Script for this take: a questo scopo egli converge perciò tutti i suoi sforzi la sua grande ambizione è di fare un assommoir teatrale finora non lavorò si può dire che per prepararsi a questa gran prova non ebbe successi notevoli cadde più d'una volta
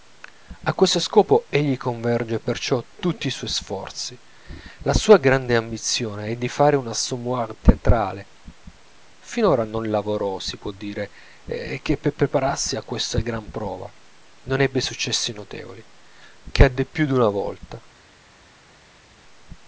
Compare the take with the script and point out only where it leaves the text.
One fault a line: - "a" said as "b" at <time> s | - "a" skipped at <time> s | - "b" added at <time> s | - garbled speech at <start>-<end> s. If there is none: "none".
none